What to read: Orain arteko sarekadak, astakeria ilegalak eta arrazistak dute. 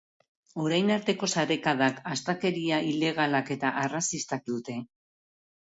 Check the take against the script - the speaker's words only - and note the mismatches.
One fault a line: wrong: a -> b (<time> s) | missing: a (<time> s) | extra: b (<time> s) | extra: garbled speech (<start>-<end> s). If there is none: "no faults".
no faults